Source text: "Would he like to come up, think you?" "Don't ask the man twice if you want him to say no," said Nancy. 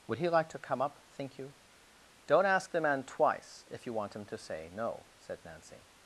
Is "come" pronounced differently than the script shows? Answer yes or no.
no